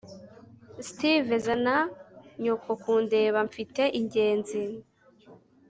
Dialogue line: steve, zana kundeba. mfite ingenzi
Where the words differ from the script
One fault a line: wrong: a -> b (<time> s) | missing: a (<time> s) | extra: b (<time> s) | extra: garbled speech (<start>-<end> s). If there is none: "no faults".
extra: nyoko (2.4 s)